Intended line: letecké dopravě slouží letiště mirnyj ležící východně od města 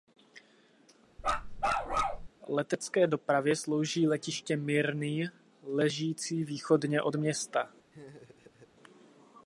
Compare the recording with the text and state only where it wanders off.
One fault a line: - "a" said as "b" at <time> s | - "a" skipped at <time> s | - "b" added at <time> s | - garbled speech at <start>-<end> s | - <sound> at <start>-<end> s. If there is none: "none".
- bark at 1.2-2.3 s
- laugh at 7.9-8.7 s